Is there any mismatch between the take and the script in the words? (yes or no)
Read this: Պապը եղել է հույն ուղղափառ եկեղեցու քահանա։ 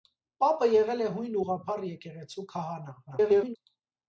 yes